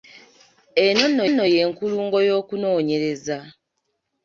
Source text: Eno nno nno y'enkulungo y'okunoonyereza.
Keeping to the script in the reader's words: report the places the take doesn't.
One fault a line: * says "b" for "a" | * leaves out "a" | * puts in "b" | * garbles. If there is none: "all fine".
all fine